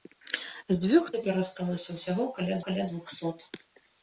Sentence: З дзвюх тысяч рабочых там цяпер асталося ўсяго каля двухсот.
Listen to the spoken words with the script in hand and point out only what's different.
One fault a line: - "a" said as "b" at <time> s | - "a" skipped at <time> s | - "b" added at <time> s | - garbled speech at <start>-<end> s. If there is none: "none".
- "тысяч рабочых там" skipped at 1.1 s
- "каля" added at 2.7 s